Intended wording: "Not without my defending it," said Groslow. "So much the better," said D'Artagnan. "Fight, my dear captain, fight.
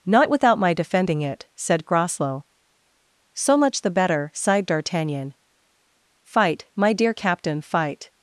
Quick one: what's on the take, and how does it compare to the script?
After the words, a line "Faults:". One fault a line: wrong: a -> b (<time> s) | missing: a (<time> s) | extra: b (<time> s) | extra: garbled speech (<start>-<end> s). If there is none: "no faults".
"Not without my defending it," said Groslow. "So much the better," sighed D'Artagnan. "Fight, my dear captain, fight.
Faults:
wrong: said -> sighed (4.3 s)